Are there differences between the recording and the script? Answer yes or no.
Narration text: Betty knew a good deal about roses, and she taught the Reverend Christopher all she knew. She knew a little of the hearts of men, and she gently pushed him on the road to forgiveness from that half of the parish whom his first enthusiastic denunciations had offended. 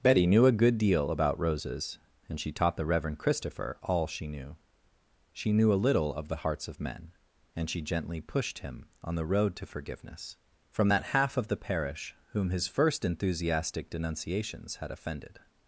no